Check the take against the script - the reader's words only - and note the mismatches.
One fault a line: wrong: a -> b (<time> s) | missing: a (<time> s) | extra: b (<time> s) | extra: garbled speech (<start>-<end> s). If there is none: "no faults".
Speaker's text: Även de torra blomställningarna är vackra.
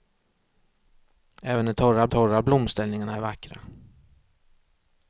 extra: torra (2.1 s)